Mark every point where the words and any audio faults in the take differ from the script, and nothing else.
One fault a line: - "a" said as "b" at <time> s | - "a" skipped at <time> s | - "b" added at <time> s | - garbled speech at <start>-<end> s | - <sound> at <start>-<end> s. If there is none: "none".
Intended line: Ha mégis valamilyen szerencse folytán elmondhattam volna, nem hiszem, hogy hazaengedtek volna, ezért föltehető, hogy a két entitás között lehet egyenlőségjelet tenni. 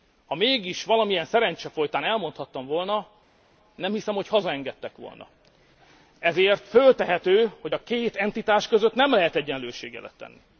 - "nem" added at 8.9 s